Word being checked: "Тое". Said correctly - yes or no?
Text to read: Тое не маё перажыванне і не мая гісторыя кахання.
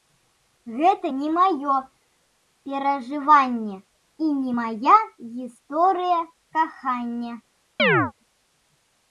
no